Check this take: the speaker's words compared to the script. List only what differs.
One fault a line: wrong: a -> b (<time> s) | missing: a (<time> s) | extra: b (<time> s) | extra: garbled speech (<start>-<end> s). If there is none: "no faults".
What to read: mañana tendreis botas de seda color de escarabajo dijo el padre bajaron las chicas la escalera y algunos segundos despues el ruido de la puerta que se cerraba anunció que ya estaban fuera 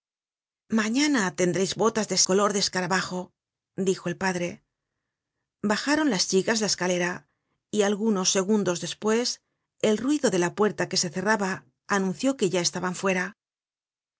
missing: seda (2.2 s)